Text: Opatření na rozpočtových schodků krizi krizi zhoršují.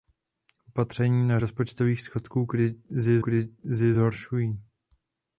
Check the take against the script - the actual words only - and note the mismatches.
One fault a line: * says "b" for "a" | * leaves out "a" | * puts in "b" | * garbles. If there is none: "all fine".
all fine